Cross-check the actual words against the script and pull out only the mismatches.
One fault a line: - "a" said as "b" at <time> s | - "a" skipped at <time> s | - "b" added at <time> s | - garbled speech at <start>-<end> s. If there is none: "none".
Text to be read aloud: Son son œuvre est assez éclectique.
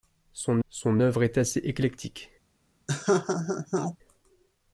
none